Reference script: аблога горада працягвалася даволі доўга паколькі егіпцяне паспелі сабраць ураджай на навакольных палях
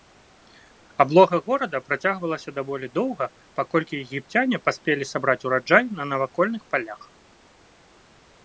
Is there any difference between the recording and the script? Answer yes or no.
no